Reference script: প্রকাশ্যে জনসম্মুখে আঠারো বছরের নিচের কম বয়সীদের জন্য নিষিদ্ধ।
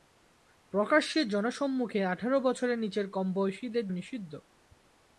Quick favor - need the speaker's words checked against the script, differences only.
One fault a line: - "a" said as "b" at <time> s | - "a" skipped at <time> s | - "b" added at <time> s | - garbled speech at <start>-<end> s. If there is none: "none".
- "জন্য" skipped at 3.9 s